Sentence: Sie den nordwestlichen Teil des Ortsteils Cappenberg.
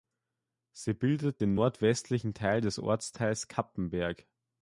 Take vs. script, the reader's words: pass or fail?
fail